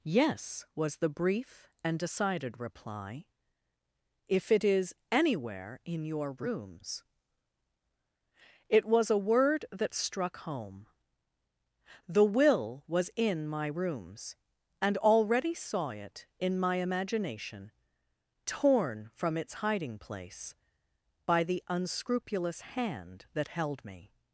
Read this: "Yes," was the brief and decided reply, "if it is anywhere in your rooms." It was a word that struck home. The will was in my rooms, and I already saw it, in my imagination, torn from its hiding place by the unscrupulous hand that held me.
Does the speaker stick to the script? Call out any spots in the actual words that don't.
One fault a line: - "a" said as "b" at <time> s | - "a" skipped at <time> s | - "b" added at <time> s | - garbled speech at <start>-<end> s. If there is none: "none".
- "I" skipped at 15.0 s